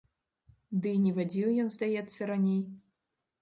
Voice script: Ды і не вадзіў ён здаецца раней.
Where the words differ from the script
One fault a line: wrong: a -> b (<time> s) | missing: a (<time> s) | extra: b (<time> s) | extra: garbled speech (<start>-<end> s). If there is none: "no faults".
no faults